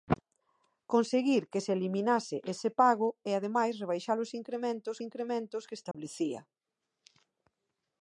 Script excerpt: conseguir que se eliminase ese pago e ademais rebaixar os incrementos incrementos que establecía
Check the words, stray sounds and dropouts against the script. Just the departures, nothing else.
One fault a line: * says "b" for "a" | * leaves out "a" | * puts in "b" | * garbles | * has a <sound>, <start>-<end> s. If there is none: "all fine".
* has a dropout, 5.9-5.9 s